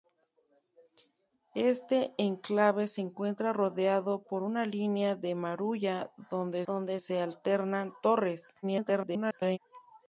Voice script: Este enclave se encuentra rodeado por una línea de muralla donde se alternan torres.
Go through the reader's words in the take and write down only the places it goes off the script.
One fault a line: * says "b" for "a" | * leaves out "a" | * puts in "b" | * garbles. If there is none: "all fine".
* puts in "donde"
* garbles